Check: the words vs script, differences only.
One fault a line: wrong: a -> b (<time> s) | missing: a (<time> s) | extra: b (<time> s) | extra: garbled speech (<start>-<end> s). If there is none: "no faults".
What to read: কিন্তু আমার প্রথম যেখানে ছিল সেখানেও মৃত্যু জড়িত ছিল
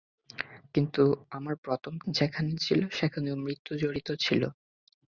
no faults